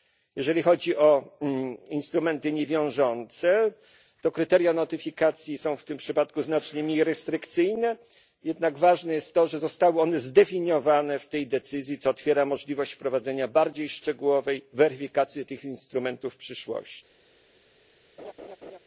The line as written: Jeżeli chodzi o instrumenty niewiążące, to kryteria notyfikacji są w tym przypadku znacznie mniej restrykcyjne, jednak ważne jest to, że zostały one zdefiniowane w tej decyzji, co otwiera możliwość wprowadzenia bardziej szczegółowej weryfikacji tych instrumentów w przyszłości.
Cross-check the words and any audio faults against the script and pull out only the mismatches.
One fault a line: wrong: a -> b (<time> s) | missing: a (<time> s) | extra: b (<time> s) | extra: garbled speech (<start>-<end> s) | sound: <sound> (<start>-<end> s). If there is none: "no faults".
sound: laugh (18.2-18.8 s)